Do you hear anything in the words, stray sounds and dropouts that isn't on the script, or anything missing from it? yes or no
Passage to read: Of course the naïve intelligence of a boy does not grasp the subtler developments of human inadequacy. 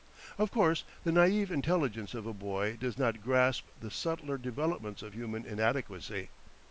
no